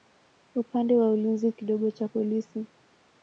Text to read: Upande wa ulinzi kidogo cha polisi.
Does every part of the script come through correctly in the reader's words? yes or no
yes